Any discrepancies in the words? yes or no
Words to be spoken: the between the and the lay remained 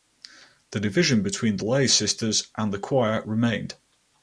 yes